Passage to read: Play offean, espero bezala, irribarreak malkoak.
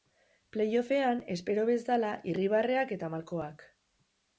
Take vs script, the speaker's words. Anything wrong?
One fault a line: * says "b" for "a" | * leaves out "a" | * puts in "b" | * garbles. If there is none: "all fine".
* puts in "eta"